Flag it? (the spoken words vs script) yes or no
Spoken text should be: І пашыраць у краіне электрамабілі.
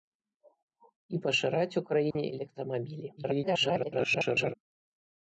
yes